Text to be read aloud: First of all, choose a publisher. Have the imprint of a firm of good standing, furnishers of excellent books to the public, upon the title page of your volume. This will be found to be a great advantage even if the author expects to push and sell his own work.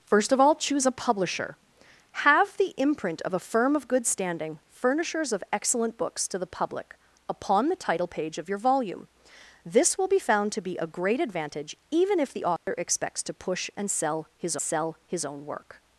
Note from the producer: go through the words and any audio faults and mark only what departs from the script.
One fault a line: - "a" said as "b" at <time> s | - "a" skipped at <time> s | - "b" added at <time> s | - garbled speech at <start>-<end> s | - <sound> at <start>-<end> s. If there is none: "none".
- dropout at 12.6-12.7 s
- "sell his" added at 14.6 s